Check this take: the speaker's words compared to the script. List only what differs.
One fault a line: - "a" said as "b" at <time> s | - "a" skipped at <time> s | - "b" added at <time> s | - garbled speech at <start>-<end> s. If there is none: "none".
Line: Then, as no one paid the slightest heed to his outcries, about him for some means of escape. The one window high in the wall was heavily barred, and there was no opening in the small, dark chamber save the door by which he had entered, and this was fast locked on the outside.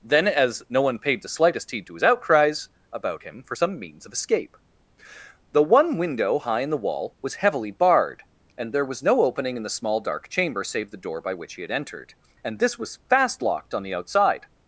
none